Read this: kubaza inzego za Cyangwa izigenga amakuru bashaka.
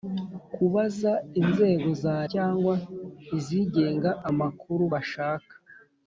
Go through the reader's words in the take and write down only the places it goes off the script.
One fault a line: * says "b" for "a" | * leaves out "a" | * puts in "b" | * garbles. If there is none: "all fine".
all fine